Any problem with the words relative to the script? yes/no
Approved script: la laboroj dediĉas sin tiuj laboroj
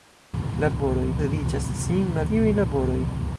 no